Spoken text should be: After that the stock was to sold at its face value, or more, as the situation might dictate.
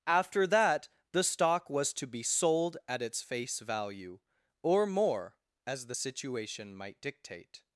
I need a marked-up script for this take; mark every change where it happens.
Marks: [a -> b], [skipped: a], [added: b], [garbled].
After that the stock was to [added: be] sold at its face value, or more, as the situation might dictate.